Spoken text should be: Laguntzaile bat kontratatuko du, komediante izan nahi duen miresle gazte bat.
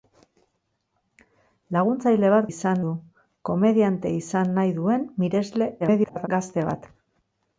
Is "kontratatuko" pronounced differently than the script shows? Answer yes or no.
yes